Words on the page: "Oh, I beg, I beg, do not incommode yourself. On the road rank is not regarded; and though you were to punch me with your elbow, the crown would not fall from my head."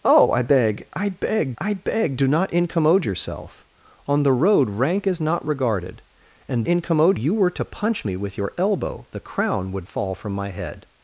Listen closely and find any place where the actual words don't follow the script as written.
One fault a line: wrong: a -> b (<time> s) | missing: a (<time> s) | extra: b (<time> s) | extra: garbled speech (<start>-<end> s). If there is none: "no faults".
extra: I beg (1.6 s)
wrong: though -> incommode (6.6 s)
missing: not (9.9 s)